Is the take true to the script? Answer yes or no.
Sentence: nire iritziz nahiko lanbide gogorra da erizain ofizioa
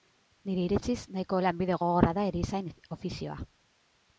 yes